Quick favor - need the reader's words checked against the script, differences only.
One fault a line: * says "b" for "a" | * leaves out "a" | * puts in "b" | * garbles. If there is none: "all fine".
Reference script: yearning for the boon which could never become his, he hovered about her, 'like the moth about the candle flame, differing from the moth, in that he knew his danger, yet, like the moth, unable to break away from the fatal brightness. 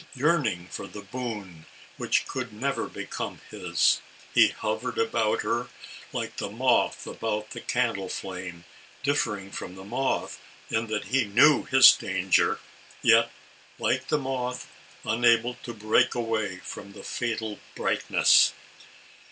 all fine